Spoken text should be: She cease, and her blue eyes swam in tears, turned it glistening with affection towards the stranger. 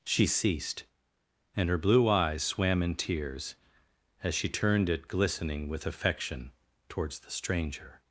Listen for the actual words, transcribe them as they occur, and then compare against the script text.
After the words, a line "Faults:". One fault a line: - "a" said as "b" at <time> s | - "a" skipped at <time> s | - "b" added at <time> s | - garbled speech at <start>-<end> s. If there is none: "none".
She ceased, and her blue eyes swam in tears, as she turned it glistening with affection towards the stranger.
Faults:
- "cease" said as "ceased" at 0.2 s
- "as she" added at 4.2 s